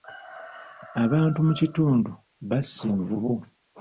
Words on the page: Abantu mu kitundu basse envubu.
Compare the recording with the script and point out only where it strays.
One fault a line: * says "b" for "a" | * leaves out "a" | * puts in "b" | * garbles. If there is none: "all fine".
all fine